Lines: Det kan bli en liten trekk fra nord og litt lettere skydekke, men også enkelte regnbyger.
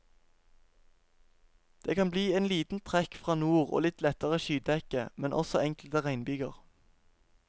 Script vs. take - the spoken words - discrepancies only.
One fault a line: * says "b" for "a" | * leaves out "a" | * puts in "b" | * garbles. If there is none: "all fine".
all fine